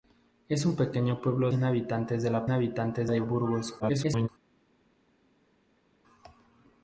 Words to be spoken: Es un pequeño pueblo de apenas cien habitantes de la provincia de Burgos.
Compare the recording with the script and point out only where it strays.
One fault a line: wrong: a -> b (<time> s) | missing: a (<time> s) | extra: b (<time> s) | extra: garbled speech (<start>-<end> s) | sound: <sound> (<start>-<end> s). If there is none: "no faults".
missing: de apenas (1.5 s)
wrong: provincia -> habitantes (2.5 s)
extra: garbled speech (3.8-4.3 s)